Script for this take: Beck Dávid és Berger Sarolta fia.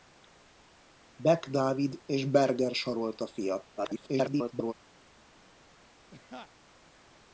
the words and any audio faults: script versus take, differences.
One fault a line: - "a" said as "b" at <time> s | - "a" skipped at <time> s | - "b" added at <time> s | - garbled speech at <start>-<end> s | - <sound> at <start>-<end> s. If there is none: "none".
- garbled speech at 3.8-4.7 s
- laugh at 6.1-6.5 s